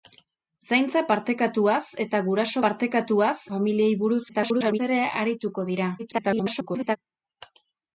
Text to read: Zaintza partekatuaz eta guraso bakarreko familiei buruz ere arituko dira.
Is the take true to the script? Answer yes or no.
no